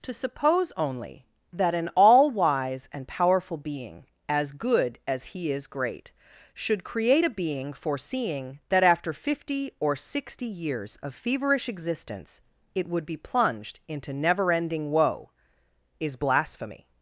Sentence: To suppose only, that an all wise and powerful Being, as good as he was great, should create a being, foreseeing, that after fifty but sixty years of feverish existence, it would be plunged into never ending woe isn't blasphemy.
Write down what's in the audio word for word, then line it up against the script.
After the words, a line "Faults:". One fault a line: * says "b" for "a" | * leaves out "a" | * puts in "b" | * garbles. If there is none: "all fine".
To suppose only, that an all wise and powerful Being, as good as he is great, should create a being, foreseeing, that after fifty or sixty years of feverish existence, it would be plunged into never ending woe is blasphemy.
Faults:
* says "is" for "was"
* says "or" for "but"
* says "is" for "isn't"